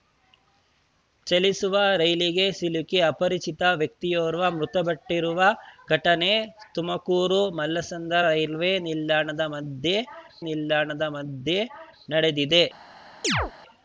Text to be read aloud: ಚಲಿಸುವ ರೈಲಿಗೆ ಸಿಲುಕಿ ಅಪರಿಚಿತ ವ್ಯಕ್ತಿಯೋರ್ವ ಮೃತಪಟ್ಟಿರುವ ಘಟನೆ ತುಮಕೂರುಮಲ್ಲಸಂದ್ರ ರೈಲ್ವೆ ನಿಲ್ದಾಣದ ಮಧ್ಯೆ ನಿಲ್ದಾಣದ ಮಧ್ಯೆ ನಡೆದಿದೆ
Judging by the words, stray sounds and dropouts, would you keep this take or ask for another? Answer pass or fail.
fail